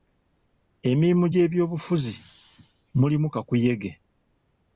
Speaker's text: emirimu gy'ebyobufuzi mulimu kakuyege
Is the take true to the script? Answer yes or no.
yes